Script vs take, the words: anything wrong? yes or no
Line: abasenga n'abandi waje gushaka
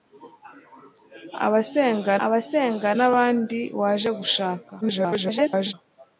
yes